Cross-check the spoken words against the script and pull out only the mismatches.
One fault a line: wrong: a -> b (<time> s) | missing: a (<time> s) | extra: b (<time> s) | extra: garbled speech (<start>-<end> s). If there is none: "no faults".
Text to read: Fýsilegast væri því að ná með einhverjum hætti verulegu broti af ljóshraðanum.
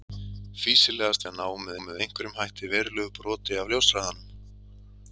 missing: væri því (1.2 s)
extra: með (1.9 s)